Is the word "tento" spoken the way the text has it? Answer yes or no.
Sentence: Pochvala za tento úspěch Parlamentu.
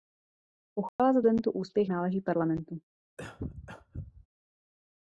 yes